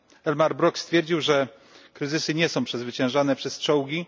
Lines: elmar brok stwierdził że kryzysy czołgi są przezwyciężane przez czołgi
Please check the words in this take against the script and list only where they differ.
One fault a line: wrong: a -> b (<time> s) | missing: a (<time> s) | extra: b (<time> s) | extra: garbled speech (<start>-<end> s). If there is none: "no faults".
wrong: czołgi -> nie (2.3 s)